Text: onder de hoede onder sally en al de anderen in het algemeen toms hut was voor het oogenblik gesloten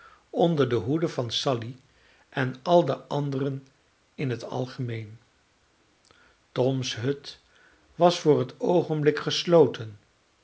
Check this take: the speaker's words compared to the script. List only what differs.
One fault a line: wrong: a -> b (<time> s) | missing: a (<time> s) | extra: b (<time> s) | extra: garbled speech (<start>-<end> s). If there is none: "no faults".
wrong: onder -> van (1.1 s)